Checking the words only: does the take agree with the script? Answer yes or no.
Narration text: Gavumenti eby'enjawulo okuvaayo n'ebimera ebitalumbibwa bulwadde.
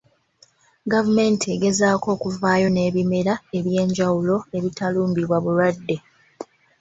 no